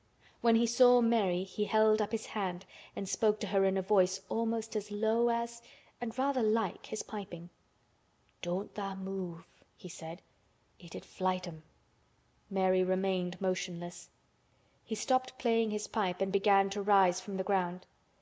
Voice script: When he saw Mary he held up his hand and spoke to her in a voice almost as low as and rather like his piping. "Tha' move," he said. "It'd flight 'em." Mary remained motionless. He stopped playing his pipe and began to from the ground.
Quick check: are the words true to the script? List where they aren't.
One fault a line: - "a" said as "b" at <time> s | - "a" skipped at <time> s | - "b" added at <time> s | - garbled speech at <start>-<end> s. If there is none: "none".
- "Don't" added at 8.4 s
- "rise" added at 16.8 s